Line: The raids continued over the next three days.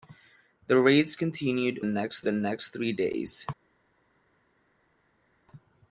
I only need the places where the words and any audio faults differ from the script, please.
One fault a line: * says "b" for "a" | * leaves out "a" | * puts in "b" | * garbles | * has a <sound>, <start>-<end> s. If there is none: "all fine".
* says "next" for "over"